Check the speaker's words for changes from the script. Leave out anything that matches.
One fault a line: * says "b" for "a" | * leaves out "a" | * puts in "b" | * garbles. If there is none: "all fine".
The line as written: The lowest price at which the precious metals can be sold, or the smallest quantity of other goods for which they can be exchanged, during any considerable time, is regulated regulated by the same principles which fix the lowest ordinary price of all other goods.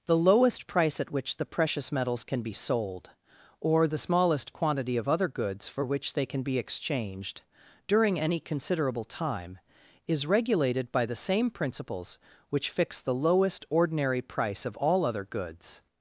* leaves out "regulated"